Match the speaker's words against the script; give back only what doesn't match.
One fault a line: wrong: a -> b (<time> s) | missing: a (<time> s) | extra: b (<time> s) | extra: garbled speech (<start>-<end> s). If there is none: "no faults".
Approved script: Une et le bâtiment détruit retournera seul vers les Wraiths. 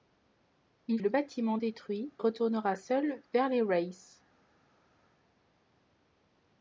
no faults